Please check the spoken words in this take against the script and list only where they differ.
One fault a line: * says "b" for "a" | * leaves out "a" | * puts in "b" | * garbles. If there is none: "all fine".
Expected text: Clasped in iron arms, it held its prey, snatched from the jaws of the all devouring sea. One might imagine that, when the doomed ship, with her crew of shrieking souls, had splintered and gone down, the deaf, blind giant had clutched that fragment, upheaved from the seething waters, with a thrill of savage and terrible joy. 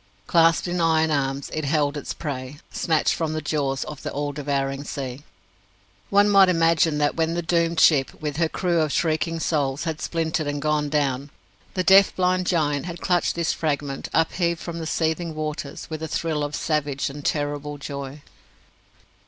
* says "this" for "that"